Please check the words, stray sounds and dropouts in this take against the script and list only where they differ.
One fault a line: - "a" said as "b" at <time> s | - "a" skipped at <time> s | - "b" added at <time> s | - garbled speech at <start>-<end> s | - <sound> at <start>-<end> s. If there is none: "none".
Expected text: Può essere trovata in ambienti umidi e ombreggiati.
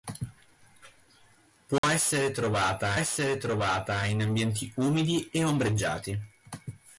- dropout at 1.8-1.8 s
- "essere trovata" added at 2.9 s